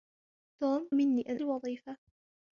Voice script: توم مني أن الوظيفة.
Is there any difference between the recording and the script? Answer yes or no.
no